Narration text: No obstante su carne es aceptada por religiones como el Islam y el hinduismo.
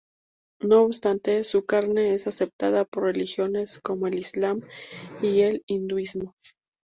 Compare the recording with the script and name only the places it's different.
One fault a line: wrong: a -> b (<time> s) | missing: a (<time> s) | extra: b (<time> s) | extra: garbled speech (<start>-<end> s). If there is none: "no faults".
no faults